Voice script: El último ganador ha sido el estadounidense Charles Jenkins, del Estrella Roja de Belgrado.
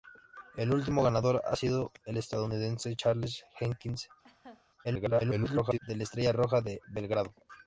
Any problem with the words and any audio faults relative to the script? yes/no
yes